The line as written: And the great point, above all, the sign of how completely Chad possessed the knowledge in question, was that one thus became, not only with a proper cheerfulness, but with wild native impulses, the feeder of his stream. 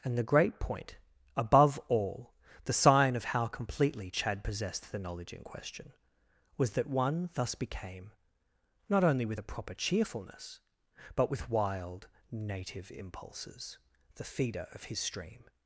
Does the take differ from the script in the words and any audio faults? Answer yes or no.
no